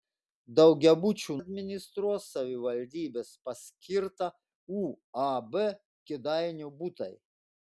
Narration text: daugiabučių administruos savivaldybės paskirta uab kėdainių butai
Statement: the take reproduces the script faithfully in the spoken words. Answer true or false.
true